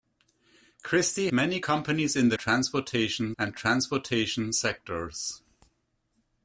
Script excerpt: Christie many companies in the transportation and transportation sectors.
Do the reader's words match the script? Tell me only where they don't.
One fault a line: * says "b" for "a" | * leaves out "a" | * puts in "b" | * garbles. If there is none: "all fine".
all fine